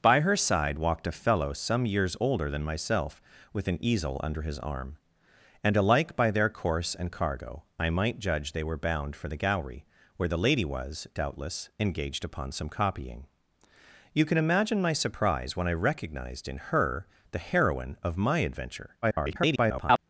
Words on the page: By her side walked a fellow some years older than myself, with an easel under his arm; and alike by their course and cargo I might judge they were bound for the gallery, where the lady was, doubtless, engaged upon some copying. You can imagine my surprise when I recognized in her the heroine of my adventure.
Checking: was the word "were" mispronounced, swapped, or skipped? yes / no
no